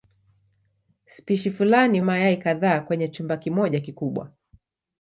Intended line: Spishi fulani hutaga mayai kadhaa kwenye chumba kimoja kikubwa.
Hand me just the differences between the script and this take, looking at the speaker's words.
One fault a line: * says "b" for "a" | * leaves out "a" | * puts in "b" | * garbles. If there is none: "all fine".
* leaves out "hutaga"